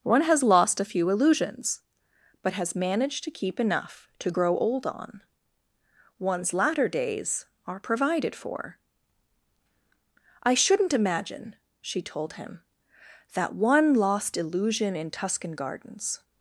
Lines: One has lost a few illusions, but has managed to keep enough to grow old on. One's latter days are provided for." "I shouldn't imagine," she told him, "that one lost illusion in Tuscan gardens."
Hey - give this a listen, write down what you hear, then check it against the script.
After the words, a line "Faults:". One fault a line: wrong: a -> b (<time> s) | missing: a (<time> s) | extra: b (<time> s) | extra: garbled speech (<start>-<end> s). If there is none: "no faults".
One has lost a few illusions, but has managed to keep enough to grow old on. One's latter days are provided for." "I shouldn't imagine," she told him, "that one lost illusion in Tuscan gardens."
Faults:
no faults